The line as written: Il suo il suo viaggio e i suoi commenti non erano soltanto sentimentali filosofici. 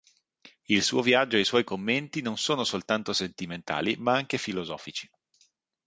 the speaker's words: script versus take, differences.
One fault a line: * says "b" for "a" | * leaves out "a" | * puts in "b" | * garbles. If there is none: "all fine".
* leaves out "il suo"
* says "sono" for "erano"
* puts in "ma anche"